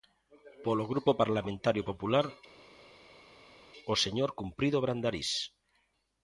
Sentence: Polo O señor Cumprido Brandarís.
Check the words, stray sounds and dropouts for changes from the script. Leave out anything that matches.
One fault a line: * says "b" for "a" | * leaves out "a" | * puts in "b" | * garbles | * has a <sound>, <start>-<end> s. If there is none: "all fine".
* puts in "Grupo Parlamentario Popular"